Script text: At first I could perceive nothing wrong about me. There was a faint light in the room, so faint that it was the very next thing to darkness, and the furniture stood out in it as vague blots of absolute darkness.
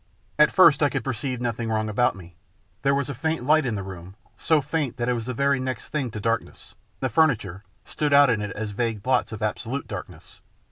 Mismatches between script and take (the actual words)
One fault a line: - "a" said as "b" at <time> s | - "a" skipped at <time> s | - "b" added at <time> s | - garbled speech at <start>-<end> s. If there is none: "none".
- "and" skipped at 6.7 s